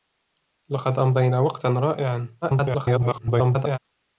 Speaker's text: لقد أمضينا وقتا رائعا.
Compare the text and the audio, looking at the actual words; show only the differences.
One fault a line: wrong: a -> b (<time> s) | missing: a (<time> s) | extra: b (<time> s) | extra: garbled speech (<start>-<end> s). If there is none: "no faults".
extra: garbled speech (2.4-3.8 s)